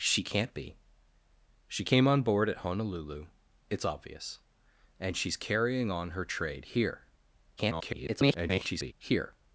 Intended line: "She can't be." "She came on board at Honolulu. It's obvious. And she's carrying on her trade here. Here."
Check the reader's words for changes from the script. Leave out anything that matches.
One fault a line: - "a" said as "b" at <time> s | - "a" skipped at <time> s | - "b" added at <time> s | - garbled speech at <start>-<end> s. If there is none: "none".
- garbled speech at 7.6-8.9 s